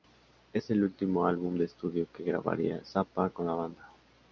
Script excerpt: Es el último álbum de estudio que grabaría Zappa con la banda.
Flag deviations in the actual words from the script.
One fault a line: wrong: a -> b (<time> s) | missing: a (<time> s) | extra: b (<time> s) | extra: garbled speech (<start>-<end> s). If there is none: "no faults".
no faults